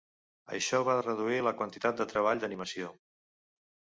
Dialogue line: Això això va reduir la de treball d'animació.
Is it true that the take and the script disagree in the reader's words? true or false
true